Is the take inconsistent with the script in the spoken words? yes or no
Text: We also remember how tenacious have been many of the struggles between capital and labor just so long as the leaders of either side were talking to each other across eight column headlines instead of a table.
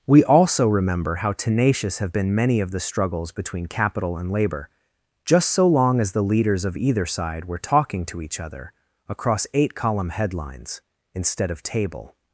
yes